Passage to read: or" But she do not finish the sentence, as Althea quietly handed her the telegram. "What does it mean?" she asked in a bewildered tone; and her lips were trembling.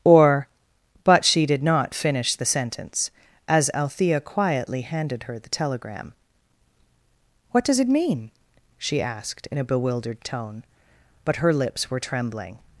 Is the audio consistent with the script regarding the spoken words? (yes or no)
no